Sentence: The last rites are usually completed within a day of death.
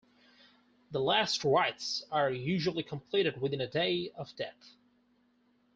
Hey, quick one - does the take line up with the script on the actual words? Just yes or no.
yes